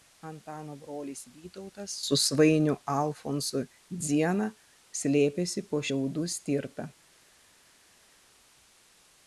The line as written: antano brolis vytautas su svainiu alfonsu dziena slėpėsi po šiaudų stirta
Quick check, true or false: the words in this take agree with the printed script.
true